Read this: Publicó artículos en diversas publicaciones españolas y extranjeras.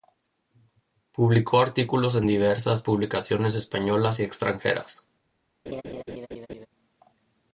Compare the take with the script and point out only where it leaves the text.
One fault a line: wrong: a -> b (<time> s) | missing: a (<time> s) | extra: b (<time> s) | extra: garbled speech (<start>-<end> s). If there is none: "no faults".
no faults